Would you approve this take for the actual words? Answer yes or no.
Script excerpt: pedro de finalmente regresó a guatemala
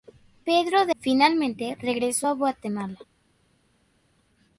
yes